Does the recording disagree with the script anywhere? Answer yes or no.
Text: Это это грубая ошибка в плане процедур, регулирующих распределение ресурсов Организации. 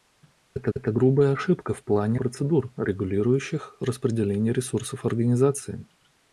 no